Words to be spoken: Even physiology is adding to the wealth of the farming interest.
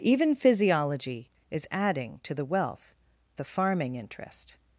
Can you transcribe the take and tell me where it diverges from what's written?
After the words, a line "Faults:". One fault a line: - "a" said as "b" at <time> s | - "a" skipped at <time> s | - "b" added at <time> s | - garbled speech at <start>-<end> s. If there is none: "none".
Even physiology is adding to the wealth the farming interest.
Faults:
- "of" skipped at 3.0 s